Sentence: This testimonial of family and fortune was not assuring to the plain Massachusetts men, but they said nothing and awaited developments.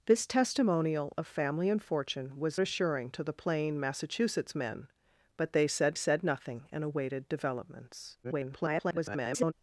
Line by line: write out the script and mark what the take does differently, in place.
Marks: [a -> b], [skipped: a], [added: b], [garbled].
This testimonial of family and fortune was [skipped: not] assuring to the plain Massachusetts men, but they said [added: said] nothing and awaited developments. [garbled]